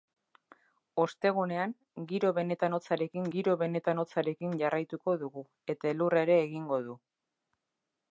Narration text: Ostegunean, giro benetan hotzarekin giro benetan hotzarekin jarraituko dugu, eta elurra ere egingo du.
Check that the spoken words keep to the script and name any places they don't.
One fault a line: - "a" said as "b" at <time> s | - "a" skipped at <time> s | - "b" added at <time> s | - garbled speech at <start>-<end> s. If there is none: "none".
none